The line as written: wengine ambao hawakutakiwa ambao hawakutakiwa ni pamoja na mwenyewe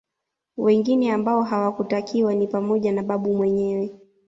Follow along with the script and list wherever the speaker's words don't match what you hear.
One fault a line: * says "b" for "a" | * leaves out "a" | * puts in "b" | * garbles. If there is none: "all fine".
* leaves out "ambao hawakutakiwa"
* puts in "babu"